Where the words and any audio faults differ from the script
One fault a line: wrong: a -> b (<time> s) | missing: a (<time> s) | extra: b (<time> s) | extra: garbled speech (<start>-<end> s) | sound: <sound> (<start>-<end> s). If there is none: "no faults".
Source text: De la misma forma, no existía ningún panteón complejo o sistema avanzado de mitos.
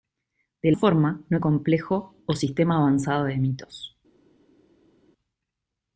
missing: la misma (0.7 s)
missing: existía ningún panteón (1.4 s)